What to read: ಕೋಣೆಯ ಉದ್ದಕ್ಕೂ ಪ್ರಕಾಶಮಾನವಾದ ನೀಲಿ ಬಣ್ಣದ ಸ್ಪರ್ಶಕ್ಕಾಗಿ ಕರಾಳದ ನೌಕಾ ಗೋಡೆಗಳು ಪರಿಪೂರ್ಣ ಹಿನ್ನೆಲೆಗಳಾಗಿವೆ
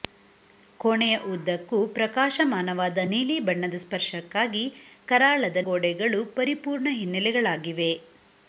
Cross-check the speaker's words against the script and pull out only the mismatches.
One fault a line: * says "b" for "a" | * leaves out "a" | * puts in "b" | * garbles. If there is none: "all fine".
* leaves out "ನೌಕಾ"